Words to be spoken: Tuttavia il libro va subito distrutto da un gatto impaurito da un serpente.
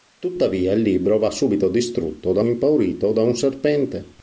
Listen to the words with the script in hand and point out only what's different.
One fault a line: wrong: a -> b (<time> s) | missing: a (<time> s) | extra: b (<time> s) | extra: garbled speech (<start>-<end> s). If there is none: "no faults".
missing: un gatto (2.4 s)